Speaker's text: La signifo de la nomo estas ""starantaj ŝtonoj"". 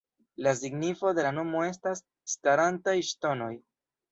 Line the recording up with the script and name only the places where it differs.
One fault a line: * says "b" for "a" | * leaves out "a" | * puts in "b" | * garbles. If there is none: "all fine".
all fine